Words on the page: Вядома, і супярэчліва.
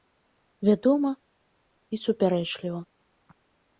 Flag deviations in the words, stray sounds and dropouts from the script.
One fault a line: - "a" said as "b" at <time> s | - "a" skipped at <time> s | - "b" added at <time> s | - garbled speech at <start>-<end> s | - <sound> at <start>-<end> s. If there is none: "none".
none